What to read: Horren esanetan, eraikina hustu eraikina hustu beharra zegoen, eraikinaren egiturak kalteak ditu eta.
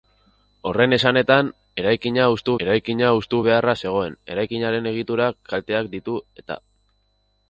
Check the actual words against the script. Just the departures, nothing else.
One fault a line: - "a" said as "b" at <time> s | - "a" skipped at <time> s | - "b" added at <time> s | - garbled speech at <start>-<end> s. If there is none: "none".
none